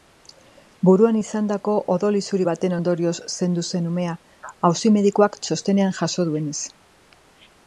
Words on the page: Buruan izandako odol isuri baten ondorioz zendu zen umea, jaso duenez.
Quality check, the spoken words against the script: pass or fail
fail